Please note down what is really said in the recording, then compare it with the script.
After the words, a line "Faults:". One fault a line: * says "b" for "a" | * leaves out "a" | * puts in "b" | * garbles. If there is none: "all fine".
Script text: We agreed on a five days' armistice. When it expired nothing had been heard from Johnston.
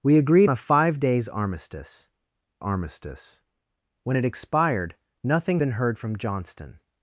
We agreed a five days' armistice armistice. When it expired nothing been heard from Johnston.
Faults:
* leaves out "on"
* puts in "armistice"
* leaves out "had"